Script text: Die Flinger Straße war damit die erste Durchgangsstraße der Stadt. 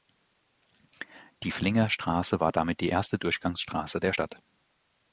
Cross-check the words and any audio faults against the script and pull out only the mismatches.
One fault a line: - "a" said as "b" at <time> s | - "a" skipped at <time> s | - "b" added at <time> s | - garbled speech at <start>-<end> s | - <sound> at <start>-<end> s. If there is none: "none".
none